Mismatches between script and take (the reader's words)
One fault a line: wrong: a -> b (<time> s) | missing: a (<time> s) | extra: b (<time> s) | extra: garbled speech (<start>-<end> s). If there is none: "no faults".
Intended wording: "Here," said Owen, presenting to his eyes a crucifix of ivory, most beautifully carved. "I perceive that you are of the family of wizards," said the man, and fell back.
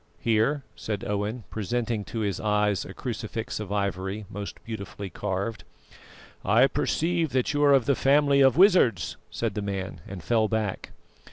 no faults